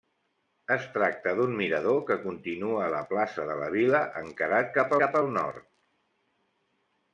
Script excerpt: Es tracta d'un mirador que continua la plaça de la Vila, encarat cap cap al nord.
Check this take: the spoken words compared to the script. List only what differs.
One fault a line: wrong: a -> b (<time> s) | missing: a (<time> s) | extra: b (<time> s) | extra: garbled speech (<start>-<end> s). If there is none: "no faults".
no faults